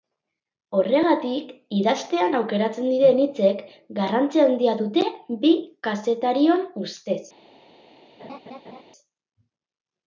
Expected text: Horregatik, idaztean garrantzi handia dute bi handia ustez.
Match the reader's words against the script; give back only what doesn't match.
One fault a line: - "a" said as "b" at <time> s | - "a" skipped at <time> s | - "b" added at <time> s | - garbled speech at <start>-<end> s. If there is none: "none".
- "aukeratzen diren hitzek" added at 2.4 s
- "handia" said as "kazetarion" at 5.9 s